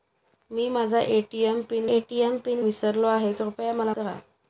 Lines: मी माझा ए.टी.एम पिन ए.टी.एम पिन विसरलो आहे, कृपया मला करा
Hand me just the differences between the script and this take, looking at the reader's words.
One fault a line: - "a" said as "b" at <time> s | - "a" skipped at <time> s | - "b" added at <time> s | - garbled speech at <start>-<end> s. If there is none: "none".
none